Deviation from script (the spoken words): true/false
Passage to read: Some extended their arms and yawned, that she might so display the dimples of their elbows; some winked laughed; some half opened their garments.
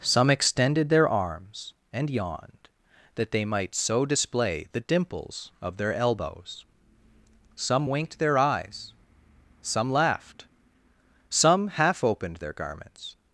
true